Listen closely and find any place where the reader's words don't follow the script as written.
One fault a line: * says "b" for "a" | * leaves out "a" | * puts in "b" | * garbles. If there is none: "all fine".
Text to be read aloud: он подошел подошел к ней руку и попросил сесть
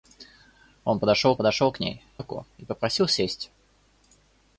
all fine